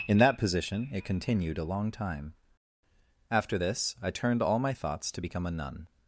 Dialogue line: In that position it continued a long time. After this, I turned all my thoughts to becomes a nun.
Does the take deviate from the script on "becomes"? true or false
true